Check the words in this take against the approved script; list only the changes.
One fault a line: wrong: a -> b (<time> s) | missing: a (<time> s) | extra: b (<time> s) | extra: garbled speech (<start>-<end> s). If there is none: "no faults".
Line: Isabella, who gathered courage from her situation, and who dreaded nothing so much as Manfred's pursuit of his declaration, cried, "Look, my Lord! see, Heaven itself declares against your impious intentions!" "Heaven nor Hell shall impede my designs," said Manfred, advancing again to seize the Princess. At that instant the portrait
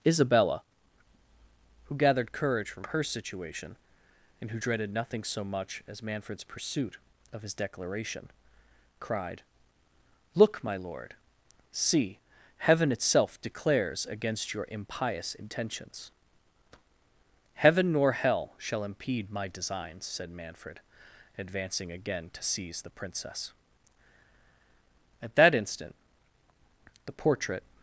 no faults